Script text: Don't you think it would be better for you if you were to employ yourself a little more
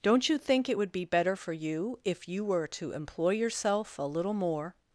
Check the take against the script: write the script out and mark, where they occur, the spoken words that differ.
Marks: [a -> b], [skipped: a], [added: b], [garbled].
Don't you think it would be better for you if you were to employ yourself a little more